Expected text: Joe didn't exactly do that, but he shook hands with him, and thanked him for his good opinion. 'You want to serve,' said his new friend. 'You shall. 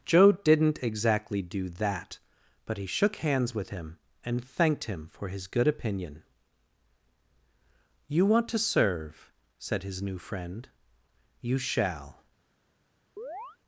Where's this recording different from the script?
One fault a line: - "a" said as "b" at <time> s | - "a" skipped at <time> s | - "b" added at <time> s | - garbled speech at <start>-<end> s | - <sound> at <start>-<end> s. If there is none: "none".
- chirp at 13.2-13.6 s